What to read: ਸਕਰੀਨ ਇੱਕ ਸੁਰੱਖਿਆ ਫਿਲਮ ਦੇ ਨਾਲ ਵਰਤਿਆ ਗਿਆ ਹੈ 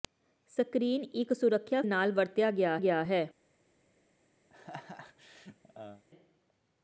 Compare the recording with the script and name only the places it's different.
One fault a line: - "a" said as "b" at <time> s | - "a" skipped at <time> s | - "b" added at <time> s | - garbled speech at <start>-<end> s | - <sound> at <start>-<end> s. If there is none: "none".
- "ਫਿਲਮ ਦੇ" skipped at 1.8 s
- "ਗਿਆ" added at 2.8 s
- laugh at 4.5-6.0 s